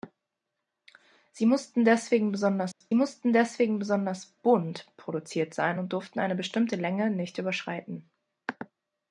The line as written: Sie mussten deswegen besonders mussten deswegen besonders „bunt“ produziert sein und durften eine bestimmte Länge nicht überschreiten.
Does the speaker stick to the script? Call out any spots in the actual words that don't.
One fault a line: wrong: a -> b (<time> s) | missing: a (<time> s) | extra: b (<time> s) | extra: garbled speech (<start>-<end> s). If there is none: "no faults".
no faults